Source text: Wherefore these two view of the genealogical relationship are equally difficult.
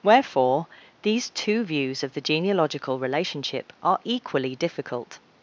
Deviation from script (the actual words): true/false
true